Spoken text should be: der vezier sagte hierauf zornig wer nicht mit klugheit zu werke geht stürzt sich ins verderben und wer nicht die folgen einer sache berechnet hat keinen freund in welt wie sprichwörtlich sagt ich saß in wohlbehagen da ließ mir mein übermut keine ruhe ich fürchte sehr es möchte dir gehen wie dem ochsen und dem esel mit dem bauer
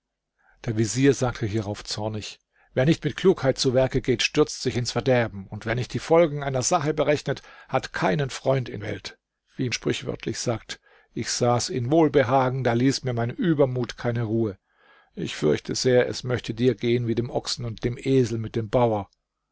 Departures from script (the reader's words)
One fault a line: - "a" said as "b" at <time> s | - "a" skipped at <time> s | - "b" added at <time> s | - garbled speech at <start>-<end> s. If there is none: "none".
none